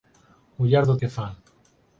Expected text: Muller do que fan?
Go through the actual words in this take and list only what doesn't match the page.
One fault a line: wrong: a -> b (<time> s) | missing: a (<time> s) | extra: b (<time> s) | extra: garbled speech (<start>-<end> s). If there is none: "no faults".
no faults